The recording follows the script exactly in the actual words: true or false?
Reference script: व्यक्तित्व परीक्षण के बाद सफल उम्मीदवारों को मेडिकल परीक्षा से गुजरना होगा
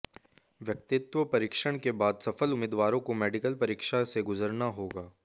true